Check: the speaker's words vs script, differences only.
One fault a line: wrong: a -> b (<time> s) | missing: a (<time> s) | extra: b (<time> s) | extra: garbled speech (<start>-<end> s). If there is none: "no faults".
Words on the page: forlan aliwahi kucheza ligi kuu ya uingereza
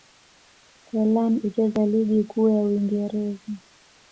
missing: aliwahi (1.4 s)